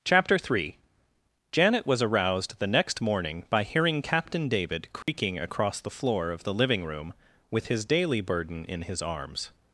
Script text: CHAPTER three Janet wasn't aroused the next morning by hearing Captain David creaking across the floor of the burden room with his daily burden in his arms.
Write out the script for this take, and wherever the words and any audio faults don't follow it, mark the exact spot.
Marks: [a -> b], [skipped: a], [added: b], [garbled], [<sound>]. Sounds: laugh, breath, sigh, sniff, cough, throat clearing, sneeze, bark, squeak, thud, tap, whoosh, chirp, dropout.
CHAPTER three Janet [wasn't -> was] aroused the next morning by hearing Captain David creaking [dropout] across the floor of the [burden -> living] room with his daily burden in his arms.